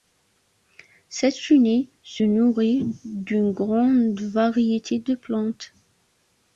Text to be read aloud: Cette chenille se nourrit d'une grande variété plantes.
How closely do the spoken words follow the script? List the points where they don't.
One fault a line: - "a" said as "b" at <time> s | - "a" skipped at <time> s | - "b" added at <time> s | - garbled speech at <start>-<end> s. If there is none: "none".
- "de" added at 5.0 s